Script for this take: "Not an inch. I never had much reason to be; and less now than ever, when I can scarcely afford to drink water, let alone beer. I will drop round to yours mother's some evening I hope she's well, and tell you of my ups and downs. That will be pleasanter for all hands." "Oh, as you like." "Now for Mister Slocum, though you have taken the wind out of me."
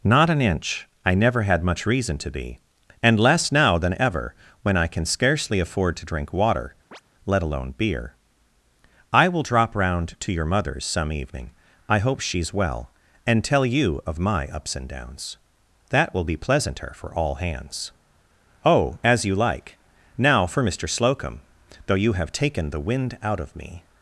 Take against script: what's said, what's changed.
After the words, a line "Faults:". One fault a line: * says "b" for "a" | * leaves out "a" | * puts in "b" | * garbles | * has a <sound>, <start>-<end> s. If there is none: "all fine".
"Not an inch. I never had much reason to be; and less now than ever, when I can scarcely afford to drink water, let alone beer. I will drop round to your mother's some evening I hope she's well, and tell you of my ups and downs. That will be pleasanter for all hands." "Oh, as you like." "Now for Mister Slocum, though you have taken the wind out of me."
Faults:
* has a chirp, 6.9-7.0 s
* says "your" for "yours"